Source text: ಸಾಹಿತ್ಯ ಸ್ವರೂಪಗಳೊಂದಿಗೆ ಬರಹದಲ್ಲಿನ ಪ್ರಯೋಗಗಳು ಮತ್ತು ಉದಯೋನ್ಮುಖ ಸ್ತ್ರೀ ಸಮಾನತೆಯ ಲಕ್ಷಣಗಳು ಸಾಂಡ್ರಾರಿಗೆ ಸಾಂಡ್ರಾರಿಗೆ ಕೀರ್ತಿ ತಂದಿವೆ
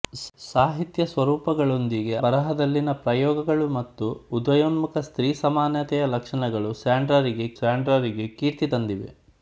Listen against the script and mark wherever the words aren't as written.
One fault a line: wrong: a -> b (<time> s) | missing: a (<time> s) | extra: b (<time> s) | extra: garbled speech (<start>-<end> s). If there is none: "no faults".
no faults